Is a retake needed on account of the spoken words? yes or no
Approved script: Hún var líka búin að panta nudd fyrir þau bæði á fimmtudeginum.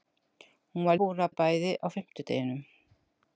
yes